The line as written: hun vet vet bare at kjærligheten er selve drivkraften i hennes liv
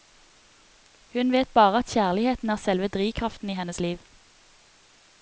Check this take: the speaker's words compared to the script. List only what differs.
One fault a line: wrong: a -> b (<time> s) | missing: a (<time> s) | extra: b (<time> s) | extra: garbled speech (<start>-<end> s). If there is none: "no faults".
missing: vet (1.5 s)